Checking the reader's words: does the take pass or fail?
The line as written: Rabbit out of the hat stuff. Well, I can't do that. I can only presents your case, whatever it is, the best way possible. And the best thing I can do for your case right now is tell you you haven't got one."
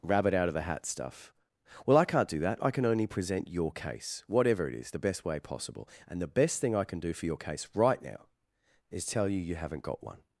fail